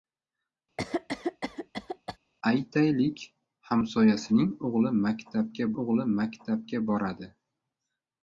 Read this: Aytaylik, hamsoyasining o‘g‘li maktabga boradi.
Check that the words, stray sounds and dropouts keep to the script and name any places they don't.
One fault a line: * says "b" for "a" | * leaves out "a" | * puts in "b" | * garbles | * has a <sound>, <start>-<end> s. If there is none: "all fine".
* has a cough, 0.8-2.2 s
* puts in "o‘g‘li maktabga"